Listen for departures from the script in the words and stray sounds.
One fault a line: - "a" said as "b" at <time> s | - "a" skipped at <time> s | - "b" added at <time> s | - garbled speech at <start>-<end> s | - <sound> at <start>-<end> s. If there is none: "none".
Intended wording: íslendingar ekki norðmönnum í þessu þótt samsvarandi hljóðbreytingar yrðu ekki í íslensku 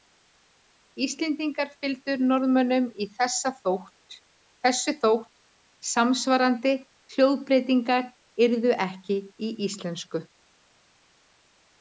- "ekki" said as "fylgdu" at 1.8 s